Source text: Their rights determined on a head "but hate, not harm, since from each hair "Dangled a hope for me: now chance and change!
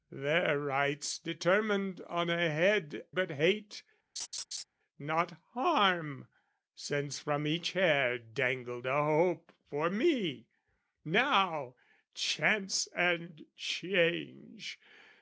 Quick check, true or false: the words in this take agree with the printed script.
true